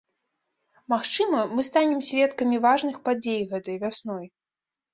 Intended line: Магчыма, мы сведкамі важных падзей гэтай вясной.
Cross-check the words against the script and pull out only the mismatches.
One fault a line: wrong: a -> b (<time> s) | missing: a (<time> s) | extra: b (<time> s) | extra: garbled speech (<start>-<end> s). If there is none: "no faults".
extra: станем (1.7 s)